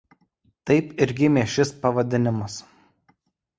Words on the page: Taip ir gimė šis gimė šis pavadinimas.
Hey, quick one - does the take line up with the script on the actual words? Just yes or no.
no